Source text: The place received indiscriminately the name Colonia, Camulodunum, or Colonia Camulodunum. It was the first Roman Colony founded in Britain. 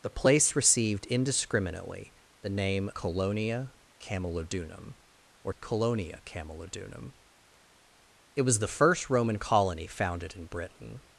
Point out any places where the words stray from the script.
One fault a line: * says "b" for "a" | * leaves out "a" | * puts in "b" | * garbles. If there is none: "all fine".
all fine